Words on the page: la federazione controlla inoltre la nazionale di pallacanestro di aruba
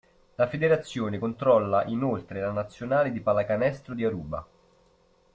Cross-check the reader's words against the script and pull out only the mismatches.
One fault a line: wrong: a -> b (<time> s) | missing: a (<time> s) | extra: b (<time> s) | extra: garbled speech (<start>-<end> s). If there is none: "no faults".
no faults